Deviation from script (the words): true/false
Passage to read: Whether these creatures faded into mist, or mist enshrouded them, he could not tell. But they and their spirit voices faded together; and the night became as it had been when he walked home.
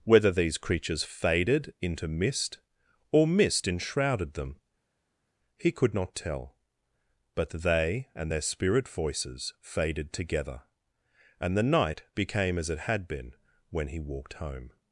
false